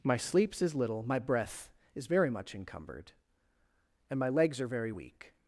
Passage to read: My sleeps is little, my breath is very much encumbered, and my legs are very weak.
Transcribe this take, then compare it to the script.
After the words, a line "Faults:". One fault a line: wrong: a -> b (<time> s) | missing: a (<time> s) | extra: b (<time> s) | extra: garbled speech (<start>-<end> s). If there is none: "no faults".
My sleeps is little, my breath is very much encumbered, and my legs are very weak.
Faults:
no faults